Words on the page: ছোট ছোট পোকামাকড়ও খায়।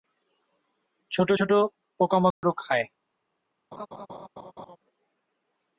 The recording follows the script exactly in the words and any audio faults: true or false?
false